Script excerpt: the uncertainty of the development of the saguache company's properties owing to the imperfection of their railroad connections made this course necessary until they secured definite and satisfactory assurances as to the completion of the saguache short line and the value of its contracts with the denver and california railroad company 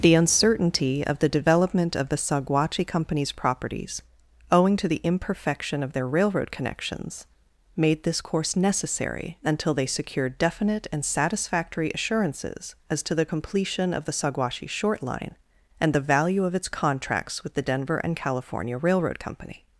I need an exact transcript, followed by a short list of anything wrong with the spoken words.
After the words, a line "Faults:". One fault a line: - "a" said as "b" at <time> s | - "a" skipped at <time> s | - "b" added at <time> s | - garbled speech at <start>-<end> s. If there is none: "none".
the uncertainty of the development of the saguache company's properties owing to the imperfection of their railroad connections made this course necessary until they secured definite and satisfactory assurances as to the completion of the saguache short line and the value of its contracts with the denver and california railroad company
Faults:
none